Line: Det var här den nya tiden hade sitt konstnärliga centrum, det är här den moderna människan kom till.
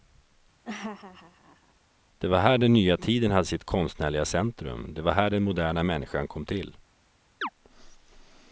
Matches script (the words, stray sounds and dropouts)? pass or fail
fail